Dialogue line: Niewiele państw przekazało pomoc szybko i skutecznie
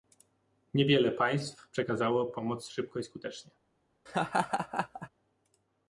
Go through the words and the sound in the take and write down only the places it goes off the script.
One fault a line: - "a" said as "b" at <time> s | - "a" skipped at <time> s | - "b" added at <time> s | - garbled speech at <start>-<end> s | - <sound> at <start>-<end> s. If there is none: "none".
- laugh at 4.1-5.1 s